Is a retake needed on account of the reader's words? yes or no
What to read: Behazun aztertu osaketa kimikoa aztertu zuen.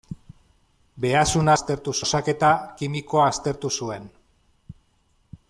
no